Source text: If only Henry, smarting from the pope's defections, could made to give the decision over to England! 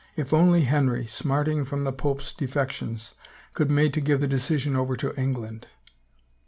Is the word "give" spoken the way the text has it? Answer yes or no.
yes